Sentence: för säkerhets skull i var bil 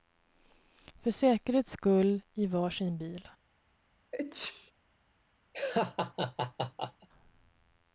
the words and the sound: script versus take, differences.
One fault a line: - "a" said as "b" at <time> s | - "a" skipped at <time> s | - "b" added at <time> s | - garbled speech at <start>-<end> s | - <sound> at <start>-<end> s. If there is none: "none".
- "sin" added at 2.7 s
- sneeze at 4.1-4.7 s
- laugh at 5.5-7.1 s